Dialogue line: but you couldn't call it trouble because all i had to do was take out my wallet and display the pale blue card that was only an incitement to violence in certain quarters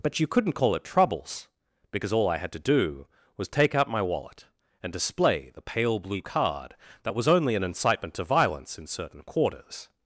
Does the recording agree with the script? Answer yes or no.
no